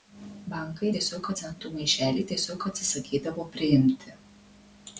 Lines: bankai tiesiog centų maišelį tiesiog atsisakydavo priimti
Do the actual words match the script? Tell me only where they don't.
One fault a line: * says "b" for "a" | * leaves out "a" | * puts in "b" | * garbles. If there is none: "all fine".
all fine